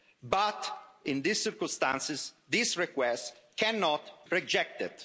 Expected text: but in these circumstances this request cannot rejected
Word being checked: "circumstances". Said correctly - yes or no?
yes